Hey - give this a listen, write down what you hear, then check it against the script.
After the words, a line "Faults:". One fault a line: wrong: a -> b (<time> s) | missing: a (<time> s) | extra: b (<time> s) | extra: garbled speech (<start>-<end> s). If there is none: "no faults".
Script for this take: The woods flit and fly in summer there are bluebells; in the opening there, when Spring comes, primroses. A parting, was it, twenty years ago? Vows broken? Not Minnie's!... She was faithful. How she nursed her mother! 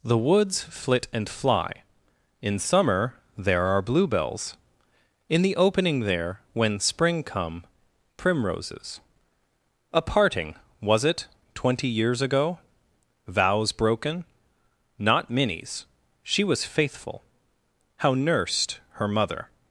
The woods flit and fly in summer there are bluebells; in the opening there, when Spring come, primroses. A parting, was it, twenty years ago? Vows broken? Not Minnie's!... She was faithful. How nursed her mother!
Faults:
wrong: comes -> come (7.2 s)
missing: she (18.1 s)